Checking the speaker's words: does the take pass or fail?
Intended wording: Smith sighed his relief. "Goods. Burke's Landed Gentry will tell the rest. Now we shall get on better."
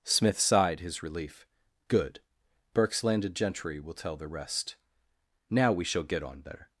fail